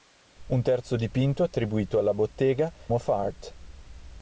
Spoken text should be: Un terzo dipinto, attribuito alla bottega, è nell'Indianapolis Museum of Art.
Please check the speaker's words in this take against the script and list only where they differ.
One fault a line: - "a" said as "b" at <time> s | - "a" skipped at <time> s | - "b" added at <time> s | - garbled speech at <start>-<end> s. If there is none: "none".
- "è nell'Indianapolis Museum" skipped at 2.7 s